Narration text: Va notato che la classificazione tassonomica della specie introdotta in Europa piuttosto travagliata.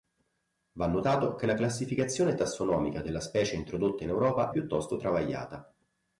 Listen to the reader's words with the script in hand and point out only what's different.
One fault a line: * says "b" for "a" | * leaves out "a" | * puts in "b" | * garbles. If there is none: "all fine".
all fine